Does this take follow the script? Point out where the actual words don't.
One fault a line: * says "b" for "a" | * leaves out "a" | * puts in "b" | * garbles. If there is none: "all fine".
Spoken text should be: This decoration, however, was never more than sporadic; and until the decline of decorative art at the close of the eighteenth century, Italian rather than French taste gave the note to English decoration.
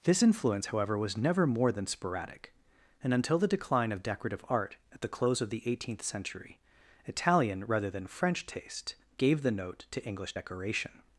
* says "influence" for "decoration"